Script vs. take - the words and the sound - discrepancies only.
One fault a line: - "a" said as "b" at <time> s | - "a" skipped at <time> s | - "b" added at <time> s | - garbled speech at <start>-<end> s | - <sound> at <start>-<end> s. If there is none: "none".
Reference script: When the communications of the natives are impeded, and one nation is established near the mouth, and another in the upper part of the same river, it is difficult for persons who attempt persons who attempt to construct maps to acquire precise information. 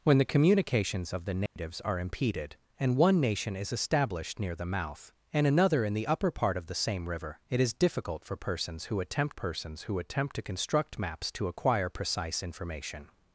- dropout at 1.5-1.6 s